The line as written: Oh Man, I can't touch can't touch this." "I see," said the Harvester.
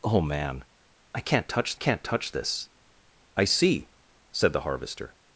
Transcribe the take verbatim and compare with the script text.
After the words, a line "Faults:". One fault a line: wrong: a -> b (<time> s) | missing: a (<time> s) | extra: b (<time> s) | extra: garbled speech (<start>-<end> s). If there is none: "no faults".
Oh Man, I can't touch can't touch this." "I see," said the Harvester.
Faults:
no faults